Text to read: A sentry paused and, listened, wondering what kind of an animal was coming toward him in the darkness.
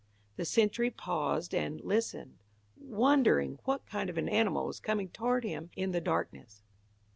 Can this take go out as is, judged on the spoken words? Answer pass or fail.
fail